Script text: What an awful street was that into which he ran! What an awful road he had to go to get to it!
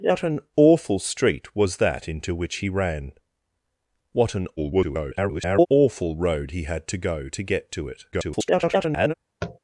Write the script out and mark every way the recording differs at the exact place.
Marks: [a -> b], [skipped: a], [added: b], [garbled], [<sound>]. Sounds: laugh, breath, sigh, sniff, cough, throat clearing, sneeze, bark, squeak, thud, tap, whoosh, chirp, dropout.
What an awful street was that into which he ran! What an [garbled] awful road he had to go to get to it! [garbled] [tap]